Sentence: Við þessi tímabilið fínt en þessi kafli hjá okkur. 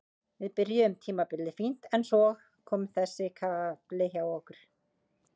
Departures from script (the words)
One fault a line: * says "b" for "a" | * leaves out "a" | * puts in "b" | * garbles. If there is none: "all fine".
* says "byrjuðum" for "þessi"
* puts in "svo kom"